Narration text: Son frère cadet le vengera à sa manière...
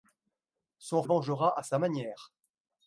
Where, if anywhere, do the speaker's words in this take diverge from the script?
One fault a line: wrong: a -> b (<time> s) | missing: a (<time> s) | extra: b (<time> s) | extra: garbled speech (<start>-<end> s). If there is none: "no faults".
missing: frère cadet le (1.0 s)